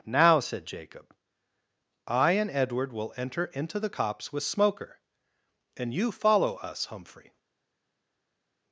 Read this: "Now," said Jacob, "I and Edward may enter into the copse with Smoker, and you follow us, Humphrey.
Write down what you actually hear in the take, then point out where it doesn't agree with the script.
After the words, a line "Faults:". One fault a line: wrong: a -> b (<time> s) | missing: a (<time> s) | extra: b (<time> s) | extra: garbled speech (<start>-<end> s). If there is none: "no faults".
"Now," said Jacob, "I and Edward will enter into the copse with Smoker, and you follow us, Humphrey.
Faults:
wrong: may -> will (2.9 s)